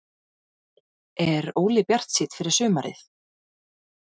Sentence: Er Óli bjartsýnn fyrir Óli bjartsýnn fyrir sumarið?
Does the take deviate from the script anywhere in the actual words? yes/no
yes